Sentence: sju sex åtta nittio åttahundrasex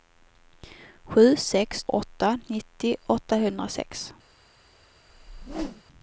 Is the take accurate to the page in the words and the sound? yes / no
no